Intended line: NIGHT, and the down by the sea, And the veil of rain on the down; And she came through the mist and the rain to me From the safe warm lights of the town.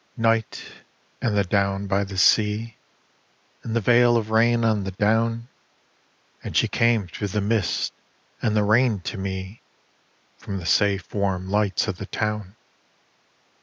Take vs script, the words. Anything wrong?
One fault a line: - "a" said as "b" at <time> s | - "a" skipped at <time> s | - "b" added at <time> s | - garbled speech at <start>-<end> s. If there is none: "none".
none